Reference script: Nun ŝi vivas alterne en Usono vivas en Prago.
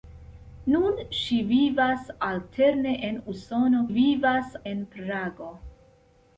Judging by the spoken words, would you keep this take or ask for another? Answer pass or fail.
pass